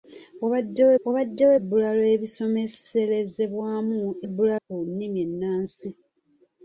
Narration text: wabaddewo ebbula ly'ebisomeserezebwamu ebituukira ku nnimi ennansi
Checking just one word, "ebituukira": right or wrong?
wrong